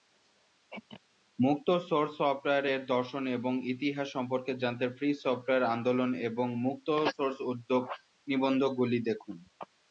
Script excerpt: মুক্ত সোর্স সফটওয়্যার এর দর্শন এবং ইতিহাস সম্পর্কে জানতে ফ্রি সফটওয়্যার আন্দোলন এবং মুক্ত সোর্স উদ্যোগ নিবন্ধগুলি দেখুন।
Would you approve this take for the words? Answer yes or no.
yes